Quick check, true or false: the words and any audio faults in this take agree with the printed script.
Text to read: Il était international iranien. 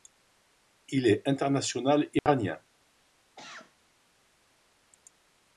false